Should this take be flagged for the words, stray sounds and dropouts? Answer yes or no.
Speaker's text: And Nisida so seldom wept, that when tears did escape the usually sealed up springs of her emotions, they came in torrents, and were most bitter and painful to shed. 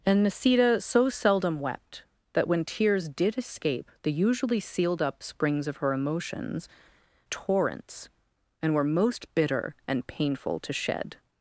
yes